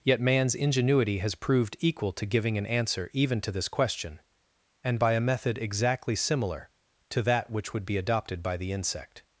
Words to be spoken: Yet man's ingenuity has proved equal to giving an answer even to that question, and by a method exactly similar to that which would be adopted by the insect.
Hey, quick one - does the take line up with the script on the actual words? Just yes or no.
no